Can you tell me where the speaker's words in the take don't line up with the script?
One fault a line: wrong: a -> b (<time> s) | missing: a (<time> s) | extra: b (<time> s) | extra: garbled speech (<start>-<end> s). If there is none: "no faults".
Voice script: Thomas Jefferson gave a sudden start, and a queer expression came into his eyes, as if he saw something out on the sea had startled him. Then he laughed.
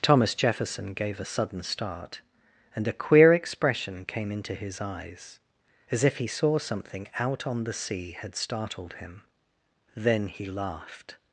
no faults